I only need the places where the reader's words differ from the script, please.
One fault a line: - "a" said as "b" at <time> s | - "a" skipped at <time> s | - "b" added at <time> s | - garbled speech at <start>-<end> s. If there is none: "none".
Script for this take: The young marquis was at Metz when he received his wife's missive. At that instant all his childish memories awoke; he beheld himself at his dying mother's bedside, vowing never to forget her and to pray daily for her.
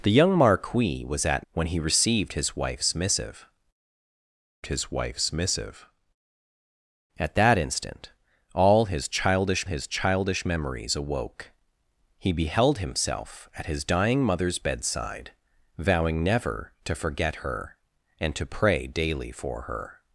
- "Metz" skipped at 1.4 s
- "his wife's missive" added at 4.7 s
- "his childish" added at 9.6 s